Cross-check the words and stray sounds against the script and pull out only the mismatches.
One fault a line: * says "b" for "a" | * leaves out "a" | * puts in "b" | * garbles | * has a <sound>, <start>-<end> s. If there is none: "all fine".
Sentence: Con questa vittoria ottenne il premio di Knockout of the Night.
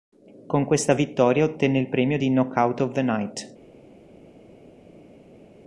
all fine